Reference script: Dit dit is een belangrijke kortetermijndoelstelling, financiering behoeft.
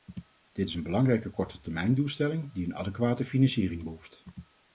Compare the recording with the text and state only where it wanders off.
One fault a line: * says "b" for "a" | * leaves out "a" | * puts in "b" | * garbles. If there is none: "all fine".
* leaves out "dit"
* puts in "die een adequate"